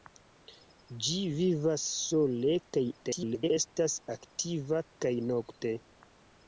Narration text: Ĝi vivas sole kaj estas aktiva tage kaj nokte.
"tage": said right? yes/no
no